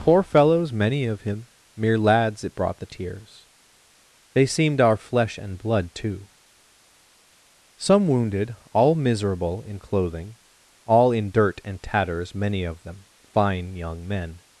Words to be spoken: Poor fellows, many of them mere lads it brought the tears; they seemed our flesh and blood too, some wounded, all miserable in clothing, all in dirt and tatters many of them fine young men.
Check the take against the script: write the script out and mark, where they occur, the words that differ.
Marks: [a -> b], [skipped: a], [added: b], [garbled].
Poor fellows, many of [them -> him] mere lads it brought the tears; they seemed our flesh and blood too, some wounded, all miserable in clothing, all in dirt and tatters many of them fine young men.